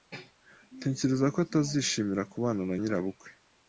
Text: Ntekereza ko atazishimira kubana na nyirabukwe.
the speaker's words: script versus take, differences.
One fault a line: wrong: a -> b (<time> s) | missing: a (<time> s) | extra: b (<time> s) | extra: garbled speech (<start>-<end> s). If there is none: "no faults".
no faults